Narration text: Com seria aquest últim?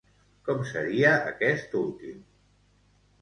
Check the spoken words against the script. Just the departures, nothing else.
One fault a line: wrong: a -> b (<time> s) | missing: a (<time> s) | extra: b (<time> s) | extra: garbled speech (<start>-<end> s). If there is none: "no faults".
no faults